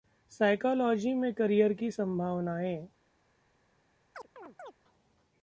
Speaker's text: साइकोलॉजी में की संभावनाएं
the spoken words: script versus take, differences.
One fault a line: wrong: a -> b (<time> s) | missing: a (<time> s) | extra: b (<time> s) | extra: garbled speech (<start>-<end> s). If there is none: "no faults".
extra: करियर (1.3 s)